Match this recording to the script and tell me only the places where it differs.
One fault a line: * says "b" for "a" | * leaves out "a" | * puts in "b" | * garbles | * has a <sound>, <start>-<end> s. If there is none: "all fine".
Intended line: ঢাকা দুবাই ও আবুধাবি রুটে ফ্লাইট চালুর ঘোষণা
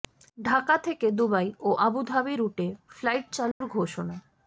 * puts in "থেকে"
* has a dropout, 3.5-3.6 s